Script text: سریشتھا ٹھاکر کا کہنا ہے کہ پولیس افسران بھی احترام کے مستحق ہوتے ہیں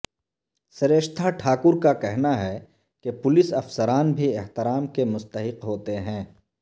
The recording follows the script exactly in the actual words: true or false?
true